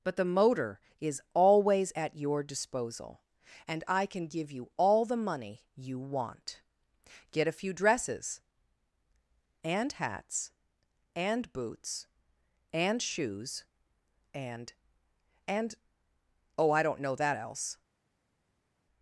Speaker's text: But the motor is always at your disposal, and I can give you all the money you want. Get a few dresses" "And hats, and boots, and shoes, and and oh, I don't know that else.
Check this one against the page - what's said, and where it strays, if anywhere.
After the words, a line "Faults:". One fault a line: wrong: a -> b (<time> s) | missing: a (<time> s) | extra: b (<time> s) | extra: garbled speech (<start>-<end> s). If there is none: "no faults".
But the motor is always at your disposal, and I can give you all the money you want. Get a few dresses" "And hats, and boots, and shoes, and and oh, I don't know that else.
Faults:
no faults